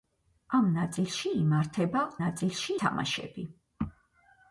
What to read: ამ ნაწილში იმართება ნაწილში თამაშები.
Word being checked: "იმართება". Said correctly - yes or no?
yes